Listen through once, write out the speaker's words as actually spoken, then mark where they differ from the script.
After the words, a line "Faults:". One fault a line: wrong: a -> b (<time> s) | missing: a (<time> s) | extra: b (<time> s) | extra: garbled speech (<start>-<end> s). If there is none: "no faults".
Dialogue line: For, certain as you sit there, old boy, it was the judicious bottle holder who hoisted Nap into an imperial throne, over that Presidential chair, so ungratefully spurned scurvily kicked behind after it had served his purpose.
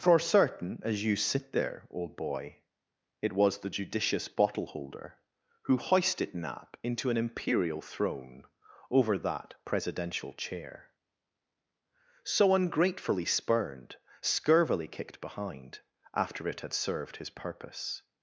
For, certain as you sit there, old boy, it was the judicious bottle holder who hoisted Nap into an imperial throne, over that Presidential chair, so ungratefully spurned scurvily kicked behind after it had served his purpose.
Faults:
no faults